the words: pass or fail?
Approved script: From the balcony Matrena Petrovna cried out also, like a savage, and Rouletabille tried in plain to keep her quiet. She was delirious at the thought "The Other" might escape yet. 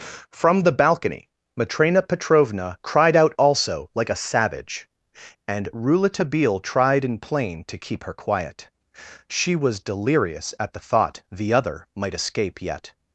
pass